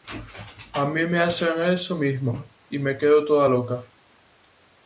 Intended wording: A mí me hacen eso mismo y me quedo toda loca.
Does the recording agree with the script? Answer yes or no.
yes